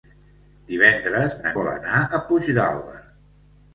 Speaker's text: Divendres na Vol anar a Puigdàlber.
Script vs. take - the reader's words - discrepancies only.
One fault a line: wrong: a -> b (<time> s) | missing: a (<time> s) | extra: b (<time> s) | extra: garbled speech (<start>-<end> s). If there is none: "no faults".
no faults